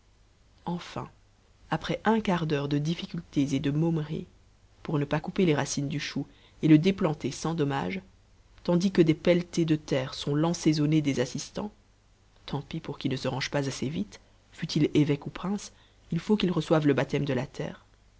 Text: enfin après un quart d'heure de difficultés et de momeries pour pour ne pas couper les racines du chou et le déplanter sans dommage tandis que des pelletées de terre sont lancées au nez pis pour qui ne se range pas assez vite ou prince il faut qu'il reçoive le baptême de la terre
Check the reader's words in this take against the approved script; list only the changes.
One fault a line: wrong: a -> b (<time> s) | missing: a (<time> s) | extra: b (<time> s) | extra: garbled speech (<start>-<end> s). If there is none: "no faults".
missing: pour (5.0 s)
extra: des assistants tant (11.0 s)
extra: fût il évêque (14.5 s)